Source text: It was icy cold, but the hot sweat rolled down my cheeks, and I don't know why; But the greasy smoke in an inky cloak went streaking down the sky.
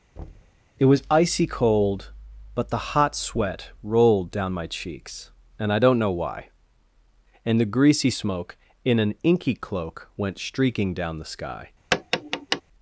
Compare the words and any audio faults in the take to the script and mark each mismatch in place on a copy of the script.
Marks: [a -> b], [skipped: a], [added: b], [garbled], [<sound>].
[thud] It was icy cold, but the hot sweat rolled down my cheeks, and I don't know why; [But -> And] the greasy smoke in an inky cloak went streaking down the sky. [tap]